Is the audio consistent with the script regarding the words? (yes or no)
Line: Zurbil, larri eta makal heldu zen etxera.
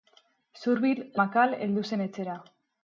no